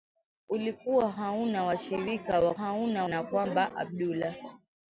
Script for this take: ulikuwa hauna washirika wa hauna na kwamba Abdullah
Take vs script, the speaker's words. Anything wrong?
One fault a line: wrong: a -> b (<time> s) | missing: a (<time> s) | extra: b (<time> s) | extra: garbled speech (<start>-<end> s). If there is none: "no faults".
no faults